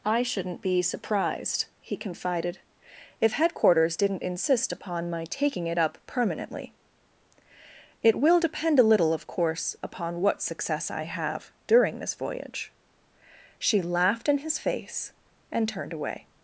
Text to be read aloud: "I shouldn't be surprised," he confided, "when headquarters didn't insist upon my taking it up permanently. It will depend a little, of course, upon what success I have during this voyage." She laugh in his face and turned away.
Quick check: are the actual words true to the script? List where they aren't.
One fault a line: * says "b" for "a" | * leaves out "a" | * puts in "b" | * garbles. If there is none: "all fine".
* says "if" for "when"
* says "laughed" for "laugh"